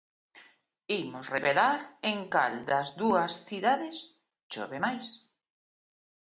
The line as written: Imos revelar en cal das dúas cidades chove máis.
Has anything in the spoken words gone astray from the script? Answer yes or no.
no